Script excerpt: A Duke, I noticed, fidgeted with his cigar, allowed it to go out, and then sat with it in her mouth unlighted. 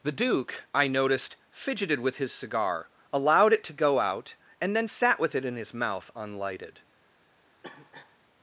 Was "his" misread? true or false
false